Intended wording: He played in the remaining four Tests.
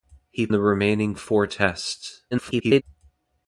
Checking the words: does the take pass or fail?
fail